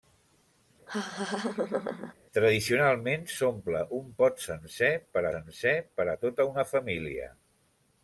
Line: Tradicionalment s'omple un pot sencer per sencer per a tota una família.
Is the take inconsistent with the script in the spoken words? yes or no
no